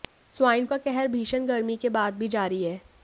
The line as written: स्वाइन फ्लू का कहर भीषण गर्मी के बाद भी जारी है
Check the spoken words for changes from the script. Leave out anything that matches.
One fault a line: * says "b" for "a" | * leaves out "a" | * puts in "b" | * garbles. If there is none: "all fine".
* leaves out "फ्लू"